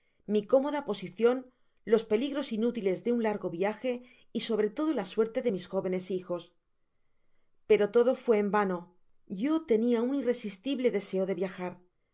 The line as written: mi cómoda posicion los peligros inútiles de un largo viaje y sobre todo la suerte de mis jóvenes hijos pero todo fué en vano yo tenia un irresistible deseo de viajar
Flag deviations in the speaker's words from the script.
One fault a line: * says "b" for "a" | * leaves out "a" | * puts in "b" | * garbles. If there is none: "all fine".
all fine